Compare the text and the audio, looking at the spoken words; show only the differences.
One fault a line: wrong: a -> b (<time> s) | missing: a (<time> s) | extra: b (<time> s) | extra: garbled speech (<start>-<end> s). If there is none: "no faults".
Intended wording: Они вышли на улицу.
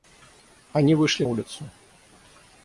missing: на (1.2 s)